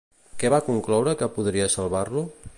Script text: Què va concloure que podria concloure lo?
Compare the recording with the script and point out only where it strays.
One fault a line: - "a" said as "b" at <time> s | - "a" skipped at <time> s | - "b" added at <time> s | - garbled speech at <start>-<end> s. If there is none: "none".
- "concloure" said as "salvar" at 1.8 s